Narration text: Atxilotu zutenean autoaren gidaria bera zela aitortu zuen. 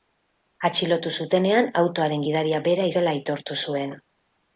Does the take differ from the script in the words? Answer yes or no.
no